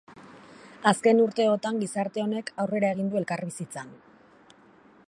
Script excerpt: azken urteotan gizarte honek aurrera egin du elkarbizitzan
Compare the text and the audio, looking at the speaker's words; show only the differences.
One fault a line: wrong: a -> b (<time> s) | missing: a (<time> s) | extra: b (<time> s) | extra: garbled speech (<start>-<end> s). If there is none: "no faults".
no faults